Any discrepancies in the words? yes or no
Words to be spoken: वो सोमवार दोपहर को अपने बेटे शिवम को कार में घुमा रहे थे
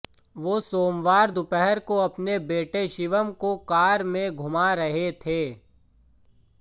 no